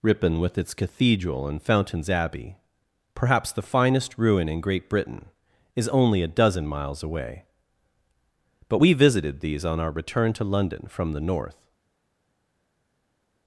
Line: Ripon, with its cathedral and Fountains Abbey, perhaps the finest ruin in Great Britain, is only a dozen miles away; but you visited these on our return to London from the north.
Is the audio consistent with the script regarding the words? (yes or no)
no